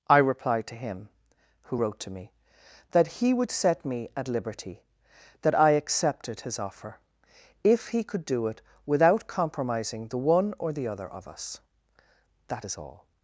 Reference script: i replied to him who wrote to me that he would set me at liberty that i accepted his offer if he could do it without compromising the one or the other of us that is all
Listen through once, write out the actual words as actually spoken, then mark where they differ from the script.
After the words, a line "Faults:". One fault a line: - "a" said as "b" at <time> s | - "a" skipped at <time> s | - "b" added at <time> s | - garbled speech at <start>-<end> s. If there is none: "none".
i replied to him who wrote to me that he would set me at liberty that i accepted his offer if he could do it without compromising the one or the other of us that is all
Faults:
none